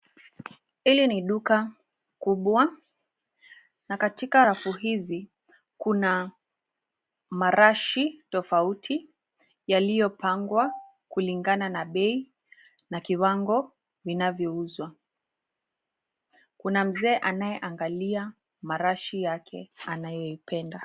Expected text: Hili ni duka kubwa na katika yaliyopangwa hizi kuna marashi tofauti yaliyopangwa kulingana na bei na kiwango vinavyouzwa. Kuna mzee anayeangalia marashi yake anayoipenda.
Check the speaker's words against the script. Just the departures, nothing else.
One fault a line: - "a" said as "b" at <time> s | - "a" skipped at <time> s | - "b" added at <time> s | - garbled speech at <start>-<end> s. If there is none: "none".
- "yaliyopangwa" said as "rafu" at 4.4 s